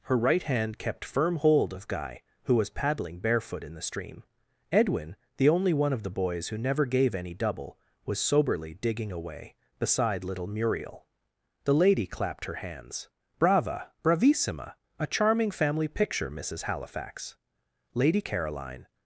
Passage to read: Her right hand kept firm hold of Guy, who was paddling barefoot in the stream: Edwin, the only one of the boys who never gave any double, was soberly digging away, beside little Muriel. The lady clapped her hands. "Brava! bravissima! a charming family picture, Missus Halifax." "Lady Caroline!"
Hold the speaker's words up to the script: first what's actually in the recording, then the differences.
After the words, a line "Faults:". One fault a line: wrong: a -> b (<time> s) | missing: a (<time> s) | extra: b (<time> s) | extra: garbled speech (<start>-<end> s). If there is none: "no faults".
Her right hand kept firm hold of Guy, who was paddling barefoot in the stream: Edwin, the only one of the boys who never gave any double, was soberly digging away, beside little Muriel. The lady clapped her hands. "Brava! bravissima! a charming family picture, Missus Halifax." "Lady Caroline!"
Faults:
no faults